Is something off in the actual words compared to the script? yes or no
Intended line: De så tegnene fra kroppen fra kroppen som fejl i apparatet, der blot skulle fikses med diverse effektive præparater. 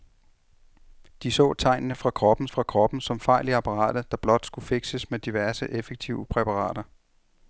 no